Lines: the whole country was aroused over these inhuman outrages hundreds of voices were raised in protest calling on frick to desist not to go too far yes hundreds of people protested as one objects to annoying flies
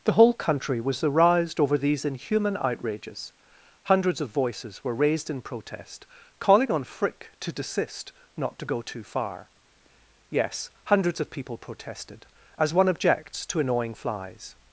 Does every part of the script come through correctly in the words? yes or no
yes